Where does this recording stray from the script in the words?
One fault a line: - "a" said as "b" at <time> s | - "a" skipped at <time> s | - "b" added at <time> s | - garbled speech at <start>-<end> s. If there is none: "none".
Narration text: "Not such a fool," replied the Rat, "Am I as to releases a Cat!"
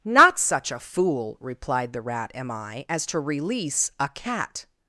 - "releases" said as "release" at 3.2 s